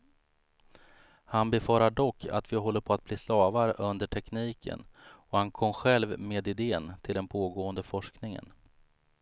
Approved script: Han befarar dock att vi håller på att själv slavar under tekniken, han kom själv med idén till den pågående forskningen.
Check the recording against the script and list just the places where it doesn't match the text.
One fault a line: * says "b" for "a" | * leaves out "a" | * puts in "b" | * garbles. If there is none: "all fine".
* says "bli" for "själv"
* puts in "och"